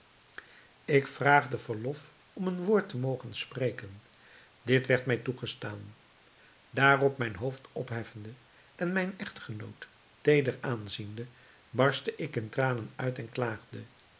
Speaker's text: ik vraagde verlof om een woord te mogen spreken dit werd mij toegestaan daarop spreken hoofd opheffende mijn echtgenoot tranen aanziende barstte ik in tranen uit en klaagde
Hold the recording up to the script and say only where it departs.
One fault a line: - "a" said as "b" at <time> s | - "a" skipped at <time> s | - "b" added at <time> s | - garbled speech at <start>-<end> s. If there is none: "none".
- "spreken" said as "mijn" at 7.2 s
- "en" added at 8.8 s
- "tranen" said as "teeder" at 10.2 s